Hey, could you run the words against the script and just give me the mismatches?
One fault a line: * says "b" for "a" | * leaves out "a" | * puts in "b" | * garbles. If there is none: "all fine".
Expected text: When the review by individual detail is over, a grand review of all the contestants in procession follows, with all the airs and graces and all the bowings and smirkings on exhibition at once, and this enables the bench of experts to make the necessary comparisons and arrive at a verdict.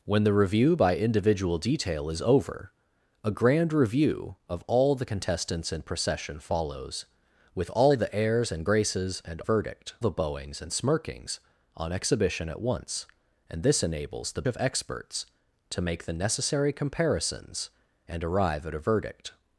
* says "verdict" for "all"
* leaves out "bench"